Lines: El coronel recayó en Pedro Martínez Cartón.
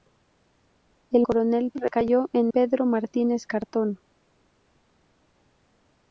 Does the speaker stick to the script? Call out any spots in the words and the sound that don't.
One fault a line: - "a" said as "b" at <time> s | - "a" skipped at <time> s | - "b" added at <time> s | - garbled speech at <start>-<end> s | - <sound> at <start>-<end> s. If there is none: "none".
none